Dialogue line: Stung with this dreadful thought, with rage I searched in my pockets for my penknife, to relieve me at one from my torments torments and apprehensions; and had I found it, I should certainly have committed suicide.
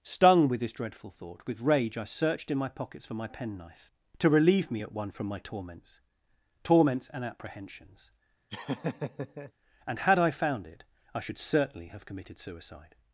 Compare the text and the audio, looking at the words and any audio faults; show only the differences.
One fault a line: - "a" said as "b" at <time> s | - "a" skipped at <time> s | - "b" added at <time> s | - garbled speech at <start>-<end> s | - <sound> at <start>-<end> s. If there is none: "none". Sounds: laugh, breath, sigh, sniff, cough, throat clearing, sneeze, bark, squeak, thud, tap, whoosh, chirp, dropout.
- laugh at 8.5-9.5 s